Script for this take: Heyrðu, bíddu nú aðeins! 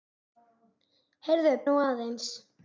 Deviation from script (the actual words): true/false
true